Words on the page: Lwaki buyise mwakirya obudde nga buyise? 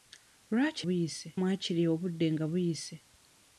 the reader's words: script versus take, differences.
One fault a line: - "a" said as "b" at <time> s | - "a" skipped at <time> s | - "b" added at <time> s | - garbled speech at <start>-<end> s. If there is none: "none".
none